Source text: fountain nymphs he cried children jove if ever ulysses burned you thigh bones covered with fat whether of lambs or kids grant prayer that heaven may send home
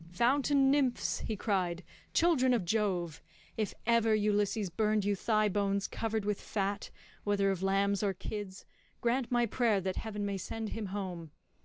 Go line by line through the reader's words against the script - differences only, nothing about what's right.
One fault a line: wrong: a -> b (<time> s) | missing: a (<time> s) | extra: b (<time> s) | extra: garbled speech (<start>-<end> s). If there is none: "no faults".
extra: of (2.5 s)
extra: my (9.3 s)
extra: him (10.7 s)